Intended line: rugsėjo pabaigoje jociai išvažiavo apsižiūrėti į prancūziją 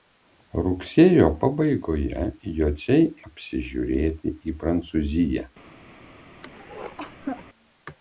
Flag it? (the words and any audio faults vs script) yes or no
yes